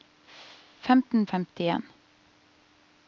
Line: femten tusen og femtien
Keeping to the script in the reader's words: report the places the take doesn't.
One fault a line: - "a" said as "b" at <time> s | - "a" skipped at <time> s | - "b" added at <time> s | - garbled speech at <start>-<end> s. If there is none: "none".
- "tusen og" skipped at 1.3 s